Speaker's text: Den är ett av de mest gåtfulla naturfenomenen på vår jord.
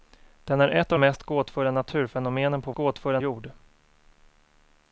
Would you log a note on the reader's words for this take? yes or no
yes